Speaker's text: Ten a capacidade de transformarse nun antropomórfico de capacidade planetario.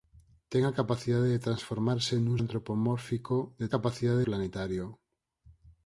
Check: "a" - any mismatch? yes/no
no